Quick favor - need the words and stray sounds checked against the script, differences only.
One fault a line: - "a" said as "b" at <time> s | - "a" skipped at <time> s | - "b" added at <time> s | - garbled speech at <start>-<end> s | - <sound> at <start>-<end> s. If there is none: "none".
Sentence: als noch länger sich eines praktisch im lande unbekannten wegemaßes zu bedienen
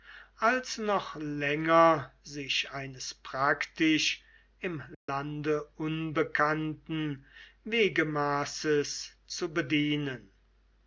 - dropout at 4.9-5.1 s